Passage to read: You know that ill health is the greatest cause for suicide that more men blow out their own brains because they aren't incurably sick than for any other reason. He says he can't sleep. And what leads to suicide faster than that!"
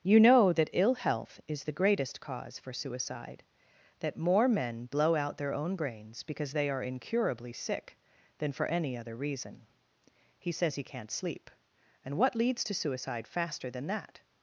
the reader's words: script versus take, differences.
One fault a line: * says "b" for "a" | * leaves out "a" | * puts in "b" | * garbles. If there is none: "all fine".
* says "are" for "aren't"